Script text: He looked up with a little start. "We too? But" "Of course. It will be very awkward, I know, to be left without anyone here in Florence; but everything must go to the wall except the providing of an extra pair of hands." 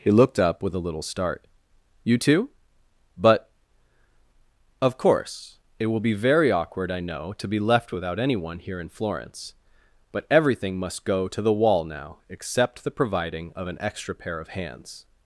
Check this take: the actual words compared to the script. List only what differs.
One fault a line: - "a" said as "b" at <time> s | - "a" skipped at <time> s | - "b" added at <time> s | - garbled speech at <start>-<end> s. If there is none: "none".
- "We" said as "You" at 2.0 s
- "now" added at 11.8 s